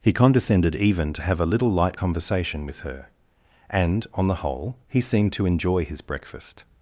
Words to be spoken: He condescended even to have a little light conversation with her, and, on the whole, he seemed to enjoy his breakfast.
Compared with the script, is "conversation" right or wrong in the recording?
right